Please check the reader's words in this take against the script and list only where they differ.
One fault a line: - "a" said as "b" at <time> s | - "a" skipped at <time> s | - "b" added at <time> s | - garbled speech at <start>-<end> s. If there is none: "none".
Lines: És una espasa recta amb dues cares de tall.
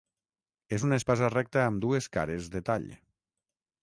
none